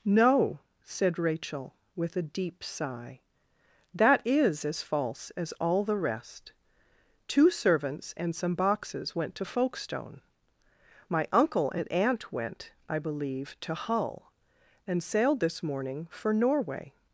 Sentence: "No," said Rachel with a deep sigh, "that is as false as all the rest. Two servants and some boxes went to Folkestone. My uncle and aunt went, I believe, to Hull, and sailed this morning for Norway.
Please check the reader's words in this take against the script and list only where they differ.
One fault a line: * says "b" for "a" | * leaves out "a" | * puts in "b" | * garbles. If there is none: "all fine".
all fine